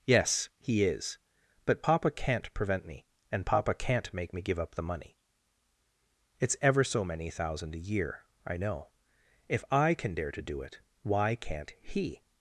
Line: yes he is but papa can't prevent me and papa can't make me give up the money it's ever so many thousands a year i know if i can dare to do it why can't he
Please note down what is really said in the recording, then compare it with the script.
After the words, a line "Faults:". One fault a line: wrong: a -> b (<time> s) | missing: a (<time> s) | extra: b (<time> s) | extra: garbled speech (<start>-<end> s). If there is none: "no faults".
yes he is but papa can't prevent me and papa can't make me give up the money it's ever so many thousand a year i know if i can dare to do it why can't he
Faults:
wrong: thousands -> thousand (7.3 s)